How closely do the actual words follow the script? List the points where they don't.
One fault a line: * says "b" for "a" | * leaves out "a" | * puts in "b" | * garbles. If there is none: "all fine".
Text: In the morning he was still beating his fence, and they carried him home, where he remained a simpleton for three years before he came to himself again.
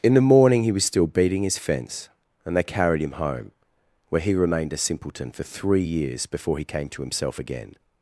all fine